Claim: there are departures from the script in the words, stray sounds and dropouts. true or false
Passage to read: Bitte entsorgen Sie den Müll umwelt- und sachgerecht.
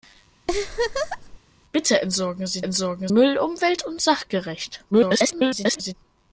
true